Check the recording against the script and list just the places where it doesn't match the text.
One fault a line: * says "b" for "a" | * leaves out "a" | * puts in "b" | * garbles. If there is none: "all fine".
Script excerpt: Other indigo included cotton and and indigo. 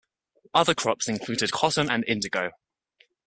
* says "crops" for "indigo"
* leaves out "and"